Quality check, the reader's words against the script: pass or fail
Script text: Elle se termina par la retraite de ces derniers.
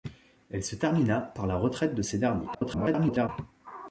fail